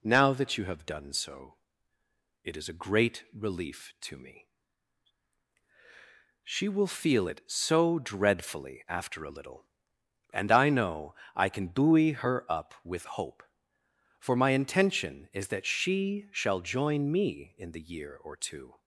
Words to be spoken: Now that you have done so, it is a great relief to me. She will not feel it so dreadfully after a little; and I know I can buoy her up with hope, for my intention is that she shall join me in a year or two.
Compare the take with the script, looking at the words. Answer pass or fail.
fail